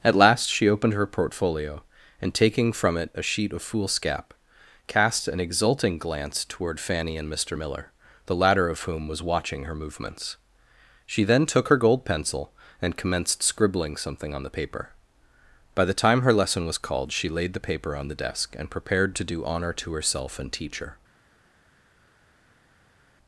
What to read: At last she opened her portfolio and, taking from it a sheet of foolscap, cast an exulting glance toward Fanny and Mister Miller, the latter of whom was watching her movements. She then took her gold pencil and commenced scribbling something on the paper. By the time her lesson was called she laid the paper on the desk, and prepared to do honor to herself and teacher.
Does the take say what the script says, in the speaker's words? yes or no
yes